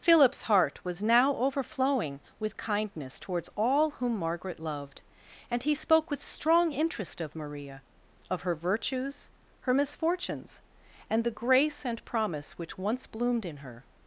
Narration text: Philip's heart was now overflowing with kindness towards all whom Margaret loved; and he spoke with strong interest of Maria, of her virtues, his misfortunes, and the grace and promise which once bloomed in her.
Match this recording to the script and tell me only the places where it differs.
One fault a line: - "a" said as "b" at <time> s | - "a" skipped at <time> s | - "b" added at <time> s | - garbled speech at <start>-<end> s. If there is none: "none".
- "his" said as "her" at 9.6 s